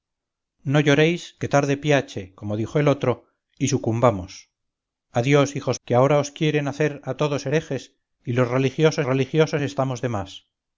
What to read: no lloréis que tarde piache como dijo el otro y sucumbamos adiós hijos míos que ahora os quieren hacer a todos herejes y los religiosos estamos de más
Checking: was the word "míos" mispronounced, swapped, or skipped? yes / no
yes